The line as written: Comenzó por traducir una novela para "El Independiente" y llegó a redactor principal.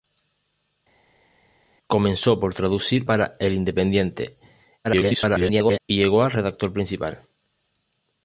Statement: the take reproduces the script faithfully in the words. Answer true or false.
false